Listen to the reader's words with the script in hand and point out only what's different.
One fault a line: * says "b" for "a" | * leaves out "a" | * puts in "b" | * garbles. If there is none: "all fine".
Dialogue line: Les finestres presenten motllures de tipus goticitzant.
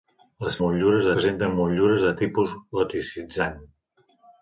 * says "motllures" for "finestres"